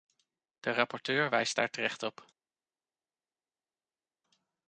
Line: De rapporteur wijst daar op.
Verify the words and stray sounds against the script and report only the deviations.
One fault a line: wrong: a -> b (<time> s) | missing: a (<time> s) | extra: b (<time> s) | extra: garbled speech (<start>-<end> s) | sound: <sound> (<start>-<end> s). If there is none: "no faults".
extra: terecht (1.7 s)